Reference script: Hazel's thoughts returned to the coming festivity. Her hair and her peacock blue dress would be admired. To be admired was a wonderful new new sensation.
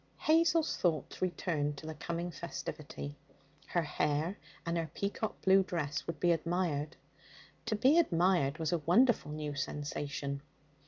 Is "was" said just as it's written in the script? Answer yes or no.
yes